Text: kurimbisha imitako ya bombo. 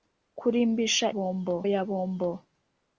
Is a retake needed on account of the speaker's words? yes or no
yes